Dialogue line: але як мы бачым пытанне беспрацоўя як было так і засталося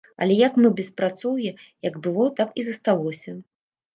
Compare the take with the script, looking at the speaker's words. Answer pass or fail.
fail